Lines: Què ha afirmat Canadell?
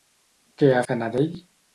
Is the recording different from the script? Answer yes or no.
yes